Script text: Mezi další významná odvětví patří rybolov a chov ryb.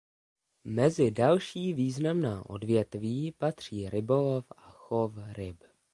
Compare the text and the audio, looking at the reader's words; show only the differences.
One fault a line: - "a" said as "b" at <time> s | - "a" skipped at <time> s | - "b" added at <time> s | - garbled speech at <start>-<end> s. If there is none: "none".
none